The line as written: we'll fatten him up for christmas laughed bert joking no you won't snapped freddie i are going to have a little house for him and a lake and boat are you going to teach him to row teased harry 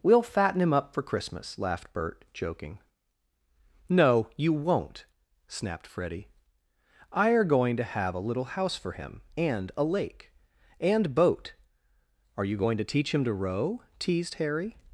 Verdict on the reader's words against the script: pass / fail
pass